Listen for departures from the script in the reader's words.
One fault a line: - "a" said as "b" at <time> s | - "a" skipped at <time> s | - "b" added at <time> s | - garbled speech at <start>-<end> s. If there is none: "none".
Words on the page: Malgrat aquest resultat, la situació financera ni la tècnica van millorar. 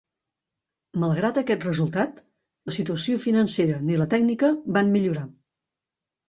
none